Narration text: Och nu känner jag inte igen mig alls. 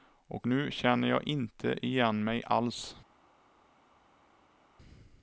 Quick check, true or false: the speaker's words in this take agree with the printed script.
true